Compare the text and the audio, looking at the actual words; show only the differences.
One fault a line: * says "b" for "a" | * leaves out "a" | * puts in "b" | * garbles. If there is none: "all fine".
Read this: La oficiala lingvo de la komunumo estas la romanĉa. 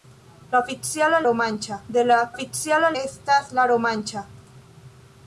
* says "romanĉa" for "lingvo"
* says "oficiala" for "komunumo"